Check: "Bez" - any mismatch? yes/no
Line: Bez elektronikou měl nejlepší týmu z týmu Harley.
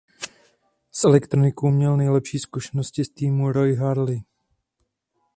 yes